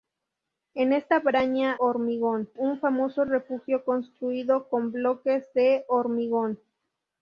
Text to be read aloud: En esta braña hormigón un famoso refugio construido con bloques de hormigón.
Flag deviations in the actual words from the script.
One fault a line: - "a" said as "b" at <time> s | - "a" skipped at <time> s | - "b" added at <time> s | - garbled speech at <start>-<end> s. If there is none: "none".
none